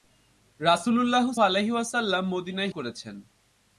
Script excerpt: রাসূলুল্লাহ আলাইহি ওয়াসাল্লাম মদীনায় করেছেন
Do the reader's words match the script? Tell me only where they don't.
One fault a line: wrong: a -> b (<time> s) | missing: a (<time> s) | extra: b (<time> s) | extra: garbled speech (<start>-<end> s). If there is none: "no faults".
no faults